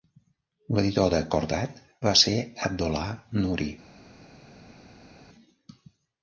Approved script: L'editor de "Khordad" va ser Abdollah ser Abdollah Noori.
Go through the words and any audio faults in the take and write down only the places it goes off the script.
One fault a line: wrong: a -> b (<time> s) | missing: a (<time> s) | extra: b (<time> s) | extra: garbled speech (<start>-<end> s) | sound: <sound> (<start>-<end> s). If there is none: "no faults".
missing: ser Abdollah (3.1 s)